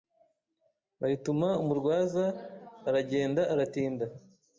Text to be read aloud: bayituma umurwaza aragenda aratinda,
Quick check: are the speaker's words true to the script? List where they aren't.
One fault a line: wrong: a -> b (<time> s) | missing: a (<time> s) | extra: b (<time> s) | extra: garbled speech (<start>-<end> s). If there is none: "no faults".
no faults